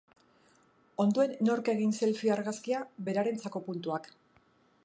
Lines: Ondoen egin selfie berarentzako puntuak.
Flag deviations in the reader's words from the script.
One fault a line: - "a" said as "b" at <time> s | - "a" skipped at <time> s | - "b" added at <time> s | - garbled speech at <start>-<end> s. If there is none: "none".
- "nork" added at 1.5 s
- "argazkia" added at 2.4 s